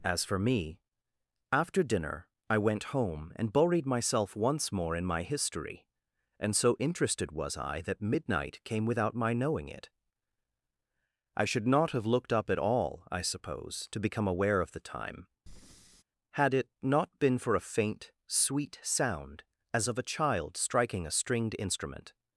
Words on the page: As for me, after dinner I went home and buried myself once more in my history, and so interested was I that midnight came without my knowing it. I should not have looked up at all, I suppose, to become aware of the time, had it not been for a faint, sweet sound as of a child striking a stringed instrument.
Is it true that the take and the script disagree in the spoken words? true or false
false